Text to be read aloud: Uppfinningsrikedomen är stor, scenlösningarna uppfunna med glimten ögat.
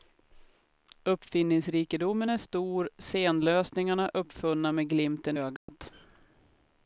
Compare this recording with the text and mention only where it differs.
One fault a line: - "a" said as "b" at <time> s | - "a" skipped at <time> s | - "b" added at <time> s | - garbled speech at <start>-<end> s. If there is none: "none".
none